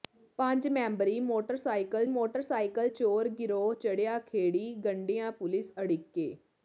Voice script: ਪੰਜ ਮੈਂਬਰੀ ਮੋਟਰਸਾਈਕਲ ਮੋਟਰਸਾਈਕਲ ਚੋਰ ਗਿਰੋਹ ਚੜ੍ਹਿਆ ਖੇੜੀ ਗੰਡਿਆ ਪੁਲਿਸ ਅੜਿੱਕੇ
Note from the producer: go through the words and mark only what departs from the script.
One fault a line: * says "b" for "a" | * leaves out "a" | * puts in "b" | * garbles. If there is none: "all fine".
all fine